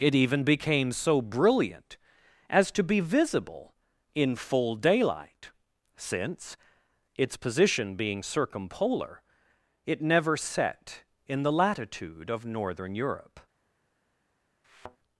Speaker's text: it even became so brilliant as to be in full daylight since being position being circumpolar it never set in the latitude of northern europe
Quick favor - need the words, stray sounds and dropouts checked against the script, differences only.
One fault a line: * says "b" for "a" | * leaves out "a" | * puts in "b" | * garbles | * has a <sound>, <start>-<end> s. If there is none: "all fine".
* puts in "visible"
* says "its" for "being"
* has a thud, 14.6-15.0 s